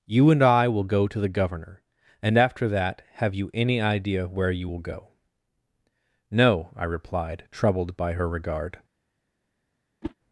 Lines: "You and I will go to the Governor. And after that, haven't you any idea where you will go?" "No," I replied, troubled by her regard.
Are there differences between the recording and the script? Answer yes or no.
yes